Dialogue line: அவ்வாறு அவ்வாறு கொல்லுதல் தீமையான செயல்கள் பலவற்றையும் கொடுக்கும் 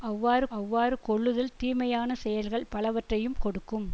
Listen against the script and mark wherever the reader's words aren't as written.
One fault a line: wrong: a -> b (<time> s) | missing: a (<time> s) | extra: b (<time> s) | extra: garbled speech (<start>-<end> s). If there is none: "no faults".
no faults